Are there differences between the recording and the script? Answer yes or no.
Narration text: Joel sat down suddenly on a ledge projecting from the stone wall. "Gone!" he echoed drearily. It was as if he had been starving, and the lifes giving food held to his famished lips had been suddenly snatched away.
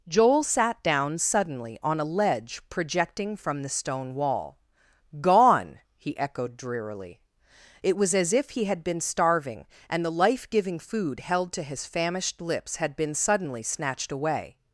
yes